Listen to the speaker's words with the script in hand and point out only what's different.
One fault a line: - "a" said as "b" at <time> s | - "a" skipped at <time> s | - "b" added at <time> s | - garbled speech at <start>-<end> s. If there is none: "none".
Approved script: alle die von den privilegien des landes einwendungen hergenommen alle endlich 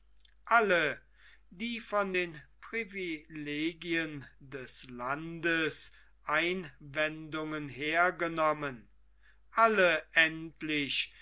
none